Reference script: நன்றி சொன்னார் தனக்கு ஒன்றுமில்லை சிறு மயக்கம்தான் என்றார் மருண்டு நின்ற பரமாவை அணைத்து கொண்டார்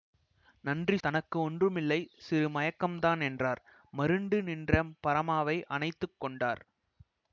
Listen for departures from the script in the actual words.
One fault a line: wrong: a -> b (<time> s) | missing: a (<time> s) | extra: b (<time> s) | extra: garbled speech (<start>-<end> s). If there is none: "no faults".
missing: சொன்னார் (1.0 s)